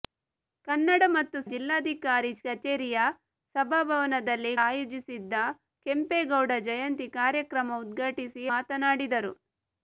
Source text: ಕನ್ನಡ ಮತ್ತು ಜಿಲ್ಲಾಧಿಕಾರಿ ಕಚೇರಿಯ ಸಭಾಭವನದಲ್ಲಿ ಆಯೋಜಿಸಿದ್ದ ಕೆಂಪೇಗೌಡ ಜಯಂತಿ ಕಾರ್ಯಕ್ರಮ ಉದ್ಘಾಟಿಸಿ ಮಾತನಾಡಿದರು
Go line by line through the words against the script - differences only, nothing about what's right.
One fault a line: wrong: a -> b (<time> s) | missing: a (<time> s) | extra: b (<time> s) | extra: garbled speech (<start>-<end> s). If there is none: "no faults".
no faults